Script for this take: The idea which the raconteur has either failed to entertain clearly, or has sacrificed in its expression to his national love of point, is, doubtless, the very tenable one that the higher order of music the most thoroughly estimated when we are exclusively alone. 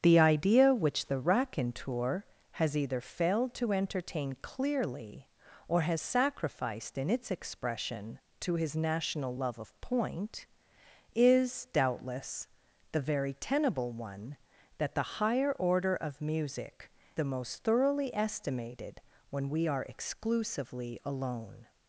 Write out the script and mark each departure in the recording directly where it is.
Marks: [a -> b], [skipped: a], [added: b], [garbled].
The idea which the raconteur has either failed to entertain clearly, or has sacrificed in its expression to his national love of point, is, doubtless, the very tenable one that the higher order of music the most thoroughly estimated when we are exclusively alone.